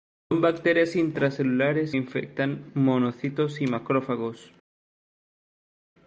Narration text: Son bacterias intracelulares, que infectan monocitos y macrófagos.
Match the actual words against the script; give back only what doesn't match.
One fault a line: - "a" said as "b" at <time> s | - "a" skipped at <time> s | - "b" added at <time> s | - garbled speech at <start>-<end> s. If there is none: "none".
- "que" skipped at 1.9 s